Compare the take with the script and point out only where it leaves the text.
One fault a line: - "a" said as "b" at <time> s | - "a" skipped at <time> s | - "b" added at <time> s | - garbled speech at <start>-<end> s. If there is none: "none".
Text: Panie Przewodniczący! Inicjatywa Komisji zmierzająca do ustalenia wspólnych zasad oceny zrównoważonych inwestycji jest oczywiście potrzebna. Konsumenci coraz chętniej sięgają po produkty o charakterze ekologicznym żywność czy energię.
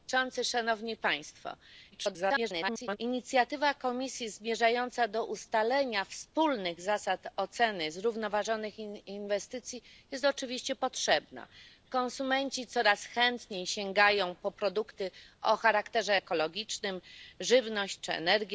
- garbled speech at 1.9-3.0 s